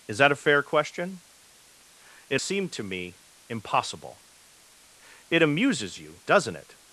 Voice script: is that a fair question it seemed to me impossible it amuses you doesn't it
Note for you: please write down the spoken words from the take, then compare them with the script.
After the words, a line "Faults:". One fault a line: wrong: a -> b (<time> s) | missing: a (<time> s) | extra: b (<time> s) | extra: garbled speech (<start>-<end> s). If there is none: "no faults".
is that a fair question it seemed to me impossible it amuses you doesn't it
Faults:
no faults